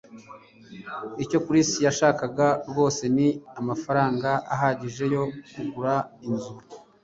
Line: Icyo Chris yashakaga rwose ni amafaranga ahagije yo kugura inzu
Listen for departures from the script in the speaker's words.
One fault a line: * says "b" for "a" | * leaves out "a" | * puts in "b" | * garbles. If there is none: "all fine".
all fine